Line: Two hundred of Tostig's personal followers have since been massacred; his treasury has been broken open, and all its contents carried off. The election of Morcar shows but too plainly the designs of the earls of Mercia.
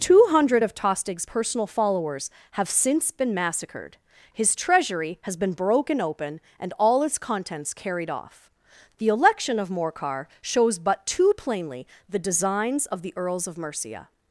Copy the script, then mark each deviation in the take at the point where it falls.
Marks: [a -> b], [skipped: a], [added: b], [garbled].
Two hundred of Tostig's personal followers have since been massacred; his treasury has been broken open, and all its contents carried off. The election of Morcar shows but too plainly the designs of the earls of Mercia.